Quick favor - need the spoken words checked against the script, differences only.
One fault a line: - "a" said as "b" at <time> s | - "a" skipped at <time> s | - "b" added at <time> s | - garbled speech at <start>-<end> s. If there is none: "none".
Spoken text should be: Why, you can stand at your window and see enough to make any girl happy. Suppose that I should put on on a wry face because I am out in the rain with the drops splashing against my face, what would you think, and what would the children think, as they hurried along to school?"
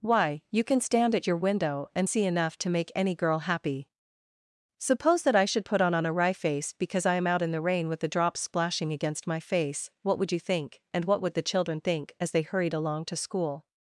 none